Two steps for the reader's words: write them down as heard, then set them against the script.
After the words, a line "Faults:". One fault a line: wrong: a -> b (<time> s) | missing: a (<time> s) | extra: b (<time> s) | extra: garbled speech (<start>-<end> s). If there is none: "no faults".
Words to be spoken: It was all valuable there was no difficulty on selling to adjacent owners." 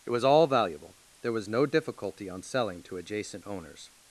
It was all valuable there was no difficulty on selling to adjacent owners."
Faults:
no faults